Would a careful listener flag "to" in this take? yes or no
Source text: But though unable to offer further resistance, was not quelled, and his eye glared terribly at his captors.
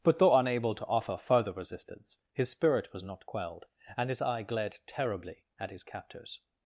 no